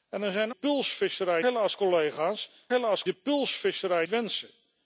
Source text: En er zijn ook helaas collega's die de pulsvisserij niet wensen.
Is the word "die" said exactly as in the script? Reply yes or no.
no